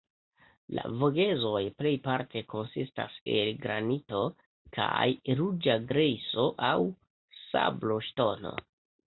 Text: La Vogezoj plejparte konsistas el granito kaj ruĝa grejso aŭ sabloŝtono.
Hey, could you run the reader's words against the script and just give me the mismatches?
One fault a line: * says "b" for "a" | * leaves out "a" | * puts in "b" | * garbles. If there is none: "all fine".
all fine